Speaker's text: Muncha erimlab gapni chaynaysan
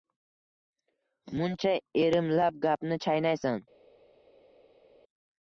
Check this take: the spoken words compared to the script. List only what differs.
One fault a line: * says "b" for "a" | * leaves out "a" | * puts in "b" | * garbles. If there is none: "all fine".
all fine